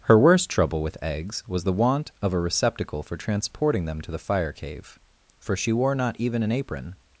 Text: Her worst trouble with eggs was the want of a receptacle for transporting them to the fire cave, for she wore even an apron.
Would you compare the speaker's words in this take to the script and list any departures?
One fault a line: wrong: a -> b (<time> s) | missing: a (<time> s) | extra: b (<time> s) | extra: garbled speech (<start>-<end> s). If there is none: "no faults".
extra: not (6.0 s)